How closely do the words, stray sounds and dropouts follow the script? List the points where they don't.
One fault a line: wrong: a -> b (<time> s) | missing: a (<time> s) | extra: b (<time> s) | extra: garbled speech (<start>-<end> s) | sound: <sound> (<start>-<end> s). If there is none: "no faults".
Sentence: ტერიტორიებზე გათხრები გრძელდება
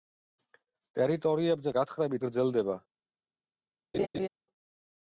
sound: laugh (3.9-4.3 s)